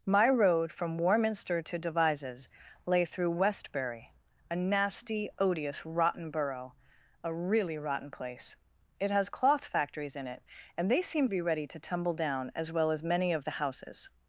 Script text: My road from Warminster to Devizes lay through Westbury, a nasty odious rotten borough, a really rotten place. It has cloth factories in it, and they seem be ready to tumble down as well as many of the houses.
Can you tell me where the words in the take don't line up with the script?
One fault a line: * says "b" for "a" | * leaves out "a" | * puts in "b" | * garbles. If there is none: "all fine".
all fine